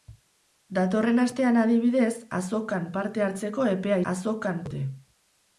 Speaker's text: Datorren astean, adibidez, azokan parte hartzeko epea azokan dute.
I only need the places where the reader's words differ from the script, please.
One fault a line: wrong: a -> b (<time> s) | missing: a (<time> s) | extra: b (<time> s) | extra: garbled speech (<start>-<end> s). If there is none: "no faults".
no faults